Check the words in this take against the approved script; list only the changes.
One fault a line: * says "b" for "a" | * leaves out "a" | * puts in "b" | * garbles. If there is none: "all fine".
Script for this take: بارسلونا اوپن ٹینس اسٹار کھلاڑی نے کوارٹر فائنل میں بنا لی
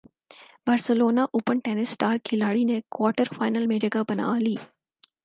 * puts in "جگہ"